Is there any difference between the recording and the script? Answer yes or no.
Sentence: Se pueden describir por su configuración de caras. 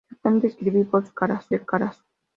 yes